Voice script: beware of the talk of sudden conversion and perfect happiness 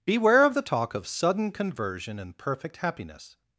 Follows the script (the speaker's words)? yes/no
yes